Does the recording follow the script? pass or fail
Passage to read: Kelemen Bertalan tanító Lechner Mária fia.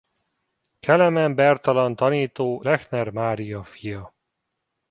pass